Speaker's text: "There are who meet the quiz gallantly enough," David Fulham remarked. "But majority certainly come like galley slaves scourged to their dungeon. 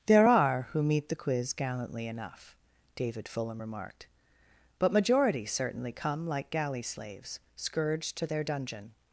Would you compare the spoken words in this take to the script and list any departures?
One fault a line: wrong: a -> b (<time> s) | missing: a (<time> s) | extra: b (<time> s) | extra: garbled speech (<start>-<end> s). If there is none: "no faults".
no faults